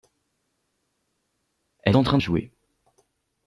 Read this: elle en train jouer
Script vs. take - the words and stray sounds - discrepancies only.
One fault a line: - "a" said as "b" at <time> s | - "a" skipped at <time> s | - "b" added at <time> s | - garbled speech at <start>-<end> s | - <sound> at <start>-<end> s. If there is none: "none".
none